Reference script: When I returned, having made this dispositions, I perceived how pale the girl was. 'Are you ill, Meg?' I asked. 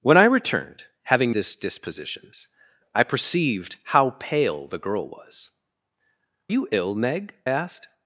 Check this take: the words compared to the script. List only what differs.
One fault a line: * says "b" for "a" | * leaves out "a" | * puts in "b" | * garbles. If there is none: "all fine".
* leaves out "made"
* leaves out "Are"
* leaves out "I"